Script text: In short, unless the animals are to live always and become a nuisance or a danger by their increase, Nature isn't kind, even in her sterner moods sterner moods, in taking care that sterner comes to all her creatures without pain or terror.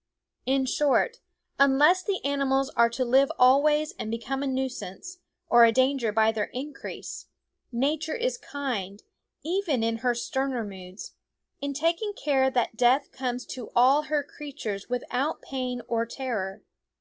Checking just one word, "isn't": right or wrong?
wrong